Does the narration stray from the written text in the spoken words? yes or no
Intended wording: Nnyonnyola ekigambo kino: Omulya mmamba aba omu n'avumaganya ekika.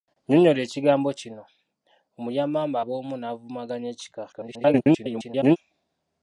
yes